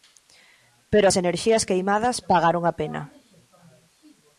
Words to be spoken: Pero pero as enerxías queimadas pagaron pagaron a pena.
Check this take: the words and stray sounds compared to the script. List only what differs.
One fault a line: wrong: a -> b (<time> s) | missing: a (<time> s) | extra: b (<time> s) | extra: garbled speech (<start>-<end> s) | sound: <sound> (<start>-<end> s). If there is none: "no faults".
missing: pero (1.1 s)
missing: pagaron (2.6 s)